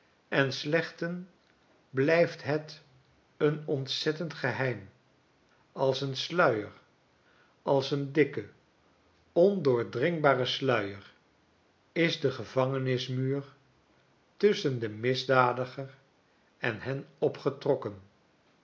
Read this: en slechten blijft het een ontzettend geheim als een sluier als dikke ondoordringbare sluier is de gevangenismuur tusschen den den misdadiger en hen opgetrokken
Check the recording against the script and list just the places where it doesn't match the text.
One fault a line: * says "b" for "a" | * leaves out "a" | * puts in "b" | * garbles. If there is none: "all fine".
* puts in "een"
* leaves out "den"